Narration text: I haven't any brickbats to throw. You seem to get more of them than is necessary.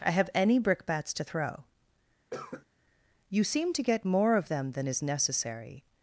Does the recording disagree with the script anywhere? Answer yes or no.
yes